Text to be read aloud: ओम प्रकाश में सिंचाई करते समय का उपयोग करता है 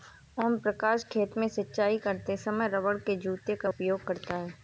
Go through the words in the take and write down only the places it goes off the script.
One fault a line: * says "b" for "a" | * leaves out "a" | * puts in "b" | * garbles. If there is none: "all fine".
* puts in "खेत"
* puts in "रबड़ के जूते"